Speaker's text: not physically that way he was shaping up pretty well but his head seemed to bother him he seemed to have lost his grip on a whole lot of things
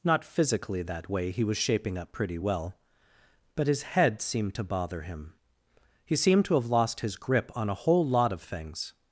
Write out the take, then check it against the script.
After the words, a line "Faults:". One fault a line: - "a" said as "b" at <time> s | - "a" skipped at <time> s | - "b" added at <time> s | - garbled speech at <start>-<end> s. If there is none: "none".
not physically that way he was shaping up pretty well but his head seemed to bother him he seemed to have lost his grip on a whole lot of things
Faults:
none